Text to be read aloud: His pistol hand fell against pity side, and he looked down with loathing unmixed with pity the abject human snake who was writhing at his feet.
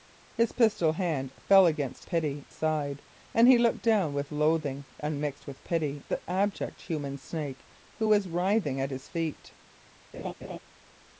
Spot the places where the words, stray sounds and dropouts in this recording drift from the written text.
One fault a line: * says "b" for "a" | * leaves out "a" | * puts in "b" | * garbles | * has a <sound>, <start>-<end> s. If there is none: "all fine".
* has a laugh, 10.1-10.6 s